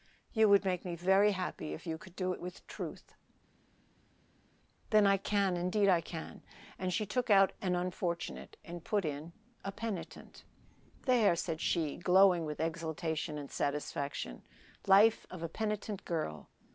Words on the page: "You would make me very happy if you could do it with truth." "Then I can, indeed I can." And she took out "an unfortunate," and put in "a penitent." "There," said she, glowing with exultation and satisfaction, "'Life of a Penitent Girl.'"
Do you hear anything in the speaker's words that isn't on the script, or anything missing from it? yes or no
no